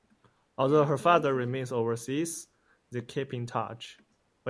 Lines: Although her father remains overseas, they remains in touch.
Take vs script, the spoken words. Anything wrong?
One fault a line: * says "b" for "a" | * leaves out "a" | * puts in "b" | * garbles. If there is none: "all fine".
* says "keep" for "remains"